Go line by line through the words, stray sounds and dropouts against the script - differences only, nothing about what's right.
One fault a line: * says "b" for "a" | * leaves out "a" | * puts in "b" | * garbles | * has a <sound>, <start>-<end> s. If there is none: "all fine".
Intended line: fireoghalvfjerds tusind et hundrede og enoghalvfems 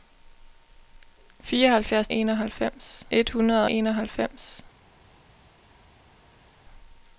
* says "enoghalvfems" for "tusind"
* leaves out "og"